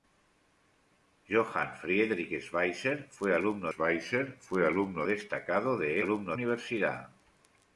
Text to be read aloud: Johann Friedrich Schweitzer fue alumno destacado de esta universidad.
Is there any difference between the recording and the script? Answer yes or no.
yes